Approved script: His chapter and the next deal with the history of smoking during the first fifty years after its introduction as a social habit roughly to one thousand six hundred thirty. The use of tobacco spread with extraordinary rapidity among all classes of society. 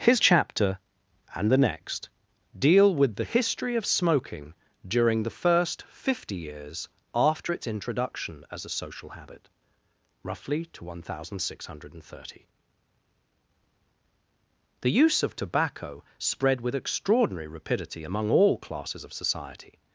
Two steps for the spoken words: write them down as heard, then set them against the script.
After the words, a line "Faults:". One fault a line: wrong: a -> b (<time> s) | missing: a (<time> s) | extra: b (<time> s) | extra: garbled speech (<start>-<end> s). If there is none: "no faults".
His chapter and the next deal with the history of smoking during the first fifty years after its introduction as a social habit roughly to one thousand six hundred thirty. The use of tobacco spread with extraordinary rapidity among all classes of society.
Faults:
no faults